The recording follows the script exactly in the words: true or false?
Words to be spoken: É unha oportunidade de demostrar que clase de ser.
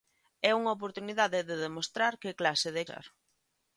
true